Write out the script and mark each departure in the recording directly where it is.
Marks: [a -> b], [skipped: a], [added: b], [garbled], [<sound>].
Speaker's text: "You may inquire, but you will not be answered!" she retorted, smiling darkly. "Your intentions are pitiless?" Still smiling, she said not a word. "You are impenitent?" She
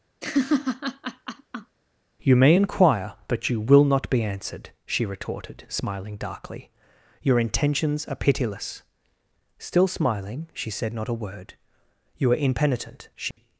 [laugh] "You may inquire, but you will not be answered!" she retorted, smiling darkly. "Your intentions are pitiless?" Still smiling, she said not a word. "You are impenitent?" She [dropout]